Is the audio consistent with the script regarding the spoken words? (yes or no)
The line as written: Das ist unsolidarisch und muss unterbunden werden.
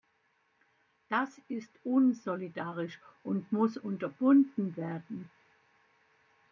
yes